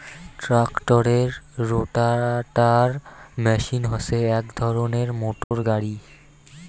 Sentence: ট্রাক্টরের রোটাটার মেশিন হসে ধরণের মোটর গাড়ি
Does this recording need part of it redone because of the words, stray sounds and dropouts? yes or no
yes